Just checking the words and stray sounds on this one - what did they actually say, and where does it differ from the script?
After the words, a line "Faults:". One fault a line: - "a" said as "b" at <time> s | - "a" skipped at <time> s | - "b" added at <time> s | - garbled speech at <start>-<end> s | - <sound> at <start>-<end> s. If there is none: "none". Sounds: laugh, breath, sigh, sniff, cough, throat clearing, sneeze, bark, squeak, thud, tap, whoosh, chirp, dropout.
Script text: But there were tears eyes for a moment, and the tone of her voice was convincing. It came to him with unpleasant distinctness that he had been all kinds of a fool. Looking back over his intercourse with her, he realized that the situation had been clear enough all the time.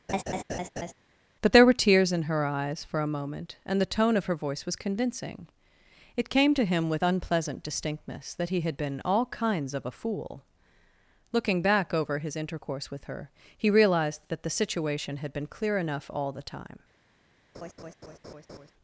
But there were tears in her eyes for a moment, and the tone of her voice was convincing. It came to him with unpleasant distinctness that he had been all kinds of a fool. Looking back over his intercourse with her, he realized that the situation had been clear enough all the time.
Faults:
- laugh at 0.1-0.9 s
- "in her" added at 2.1 s
- laugh at 17.5-18.7 s